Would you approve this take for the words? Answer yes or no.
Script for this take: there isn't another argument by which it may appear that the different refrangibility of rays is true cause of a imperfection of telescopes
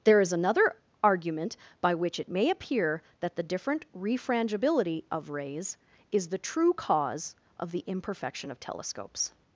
no